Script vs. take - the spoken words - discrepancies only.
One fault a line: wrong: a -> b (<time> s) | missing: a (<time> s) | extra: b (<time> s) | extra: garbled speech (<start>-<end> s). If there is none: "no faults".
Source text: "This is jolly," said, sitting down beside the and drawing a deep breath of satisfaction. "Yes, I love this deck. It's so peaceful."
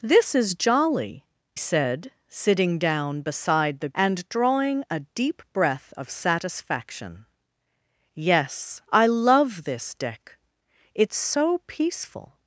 no faults